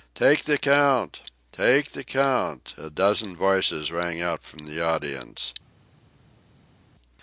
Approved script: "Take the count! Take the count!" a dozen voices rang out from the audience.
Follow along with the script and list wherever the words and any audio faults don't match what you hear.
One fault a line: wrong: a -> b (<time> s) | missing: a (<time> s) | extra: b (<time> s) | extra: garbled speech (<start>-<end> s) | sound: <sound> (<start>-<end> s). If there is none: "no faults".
no faults